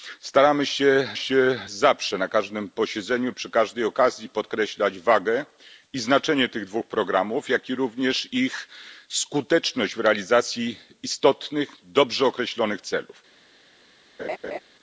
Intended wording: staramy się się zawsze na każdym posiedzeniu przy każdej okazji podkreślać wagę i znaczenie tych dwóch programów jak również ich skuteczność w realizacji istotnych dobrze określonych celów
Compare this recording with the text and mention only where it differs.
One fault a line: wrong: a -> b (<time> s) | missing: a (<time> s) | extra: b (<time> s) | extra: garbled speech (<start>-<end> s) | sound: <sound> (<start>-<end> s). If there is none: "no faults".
sound: laugh (14.2-14.6 s)